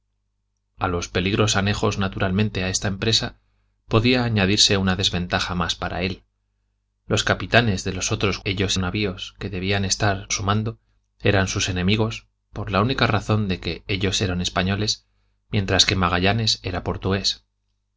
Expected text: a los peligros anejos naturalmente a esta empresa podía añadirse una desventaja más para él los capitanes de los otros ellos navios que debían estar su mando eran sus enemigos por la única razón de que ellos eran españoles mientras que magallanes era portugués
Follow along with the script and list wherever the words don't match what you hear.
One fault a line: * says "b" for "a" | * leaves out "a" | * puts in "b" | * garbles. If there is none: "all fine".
all fine